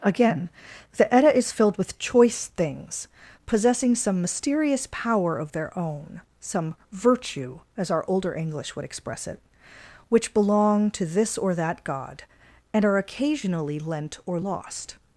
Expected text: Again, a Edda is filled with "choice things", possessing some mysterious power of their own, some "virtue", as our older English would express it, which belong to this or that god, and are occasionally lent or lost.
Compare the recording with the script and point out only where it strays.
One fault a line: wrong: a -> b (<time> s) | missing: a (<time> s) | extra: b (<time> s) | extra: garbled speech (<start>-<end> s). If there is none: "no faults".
wrong: a -> the (1.0 s)